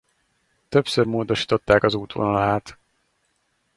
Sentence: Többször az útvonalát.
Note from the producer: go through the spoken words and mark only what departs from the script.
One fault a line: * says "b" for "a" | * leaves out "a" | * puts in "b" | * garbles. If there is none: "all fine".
* puts in "módosították"